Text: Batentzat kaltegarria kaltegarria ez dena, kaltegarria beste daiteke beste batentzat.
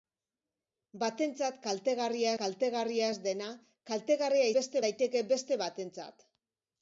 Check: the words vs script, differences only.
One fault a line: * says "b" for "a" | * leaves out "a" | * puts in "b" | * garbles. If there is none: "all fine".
all fine